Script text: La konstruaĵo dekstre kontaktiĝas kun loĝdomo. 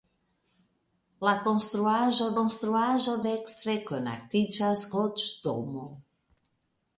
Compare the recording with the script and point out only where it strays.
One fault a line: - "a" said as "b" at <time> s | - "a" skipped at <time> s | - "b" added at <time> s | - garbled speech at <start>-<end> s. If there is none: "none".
- "konstruaĵo" added at 2.4 s
- "kun" skipped at 4.9 s